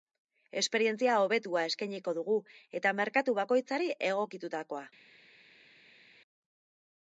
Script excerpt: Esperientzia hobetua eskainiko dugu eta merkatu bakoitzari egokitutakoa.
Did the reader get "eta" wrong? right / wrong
right